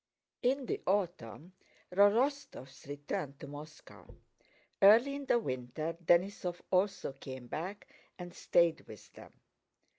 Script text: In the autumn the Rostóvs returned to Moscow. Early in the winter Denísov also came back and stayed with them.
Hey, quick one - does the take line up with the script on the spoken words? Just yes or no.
yes